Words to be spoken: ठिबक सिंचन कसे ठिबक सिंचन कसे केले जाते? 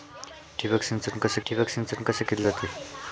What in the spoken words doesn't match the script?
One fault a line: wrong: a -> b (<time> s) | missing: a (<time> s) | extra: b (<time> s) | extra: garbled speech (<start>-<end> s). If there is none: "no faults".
no faults